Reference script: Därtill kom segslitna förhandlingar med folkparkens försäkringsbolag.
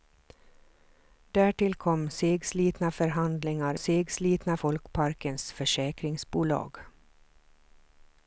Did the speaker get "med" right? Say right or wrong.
wrong